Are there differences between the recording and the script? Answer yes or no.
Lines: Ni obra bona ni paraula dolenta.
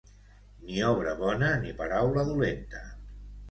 no